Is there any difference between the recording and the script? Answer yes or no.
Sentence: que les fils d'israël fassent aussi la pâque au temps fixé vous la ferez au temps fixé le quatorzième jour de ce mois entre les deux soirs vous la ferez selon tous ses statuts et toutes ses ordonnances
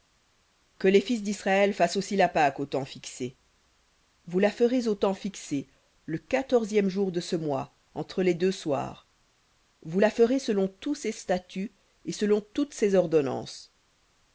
yes